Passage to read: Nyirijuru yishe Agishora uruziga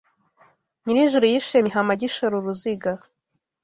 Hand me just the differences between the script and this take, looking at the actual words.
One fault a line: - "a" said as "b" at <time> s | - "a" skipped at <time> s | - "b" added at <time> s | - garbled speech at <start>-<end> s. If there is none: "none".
- "Mihama" added at 1.6 s